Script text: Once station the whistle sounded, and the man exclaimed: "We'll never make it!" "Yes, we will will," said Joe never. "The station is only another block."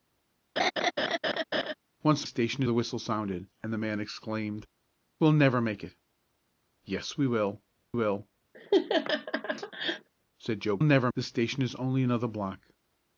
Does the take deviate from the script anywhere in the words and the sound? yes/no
yes